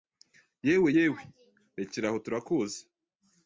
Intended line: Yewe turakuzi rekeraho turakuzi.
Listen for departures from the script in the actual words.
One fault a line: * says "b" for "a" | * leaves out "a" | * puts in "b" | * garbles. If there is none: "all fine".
* says "yewe" for "turakuzi"